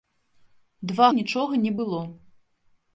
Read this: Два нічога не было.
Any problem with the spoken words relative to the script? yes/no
no